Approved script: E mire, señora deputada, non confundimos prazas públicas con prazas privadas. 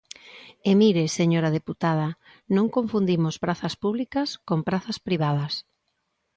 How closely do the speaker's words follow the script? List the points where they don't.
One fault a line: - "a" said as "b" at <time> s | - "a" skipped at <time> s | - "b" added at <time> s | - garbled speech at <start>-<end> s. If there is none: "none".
none